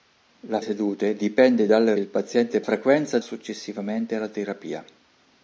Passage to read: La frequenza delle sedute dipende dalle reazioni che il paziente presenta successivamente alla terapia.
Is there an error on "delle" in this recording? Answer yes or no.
yes